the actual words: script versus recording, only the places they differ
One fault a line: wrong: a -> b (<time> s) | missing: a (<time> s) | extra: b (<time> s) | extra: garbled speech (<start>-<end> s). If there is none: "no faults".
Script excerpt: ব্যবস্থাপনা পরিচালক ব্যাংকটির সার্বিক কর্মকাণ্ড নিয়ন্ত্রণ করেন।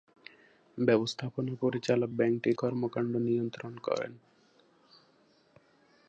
missing: সার্বিক (2.6 s)